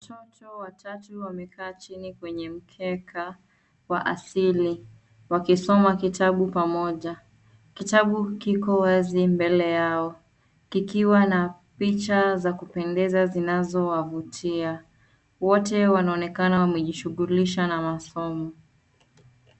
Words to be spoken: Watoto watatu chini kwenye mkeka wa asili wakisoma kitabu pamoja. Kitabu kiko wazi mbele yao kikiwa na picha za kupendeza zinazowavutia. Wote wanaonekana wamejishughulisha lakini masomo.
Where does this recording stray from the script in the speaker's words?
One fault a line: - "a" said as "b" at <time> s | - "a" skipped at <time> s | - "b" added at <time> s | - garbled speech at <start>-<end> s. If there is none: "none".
- "wamekaa" added at 1.2 s
- "lakini" said as "na" at 17.7 s